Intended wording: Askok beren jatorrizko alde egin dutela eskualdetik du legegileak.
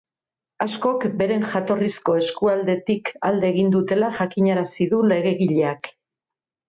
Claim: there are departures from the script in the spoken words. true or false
true